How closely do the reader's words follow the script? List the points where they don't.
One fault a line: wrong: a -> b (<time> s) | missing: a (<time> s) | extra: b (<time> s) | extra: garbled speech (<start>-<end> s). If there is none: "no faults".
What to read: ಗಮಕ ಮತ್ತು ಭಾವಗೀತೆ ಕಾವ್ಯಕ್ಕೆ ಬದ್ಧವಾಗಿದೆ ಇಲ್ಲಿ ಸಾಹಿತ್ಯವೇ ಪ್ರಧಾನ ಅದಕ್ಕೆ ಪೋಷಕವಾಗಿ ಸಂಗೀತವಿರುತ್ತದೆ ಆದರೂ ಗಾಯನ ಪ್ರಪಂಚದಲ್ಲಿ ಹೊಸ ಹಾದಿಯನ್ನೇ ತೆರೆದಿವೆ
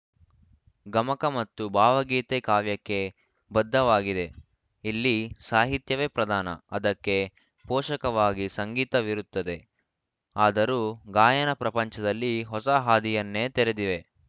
no faults